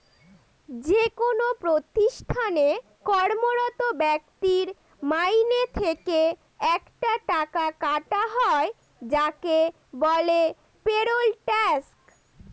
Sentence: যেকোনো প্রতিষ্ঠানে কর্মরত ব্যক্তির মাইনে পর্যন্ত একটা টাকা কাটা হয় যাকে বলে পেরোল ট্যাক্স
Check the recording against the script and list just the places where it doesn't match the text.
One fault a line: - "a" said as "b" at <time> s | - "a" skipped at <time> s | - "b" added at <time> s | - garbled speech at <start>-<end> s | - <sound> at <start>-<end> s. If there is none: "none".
- "পর্যন্ত" said as "থেকে" at 5.7 s